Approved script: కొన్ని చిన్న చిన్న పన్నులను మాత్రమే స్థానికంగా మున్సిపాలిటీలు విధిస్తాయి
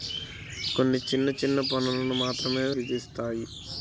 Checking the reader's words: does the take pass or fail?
fail